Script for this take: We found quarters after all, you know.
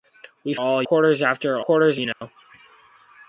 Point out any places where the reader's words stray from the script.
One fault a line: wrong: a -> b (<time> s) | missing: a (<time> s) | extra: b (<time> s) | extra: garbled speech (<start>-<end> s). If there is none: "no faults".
wrong: found -> all (0.5 s)
wrong: all -> quarters (1.6 s)